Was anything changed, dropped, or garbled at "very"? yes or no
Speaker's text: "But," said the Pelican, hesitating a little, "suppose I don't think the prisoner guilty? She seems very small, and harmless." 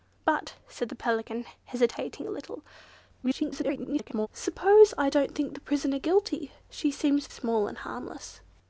yes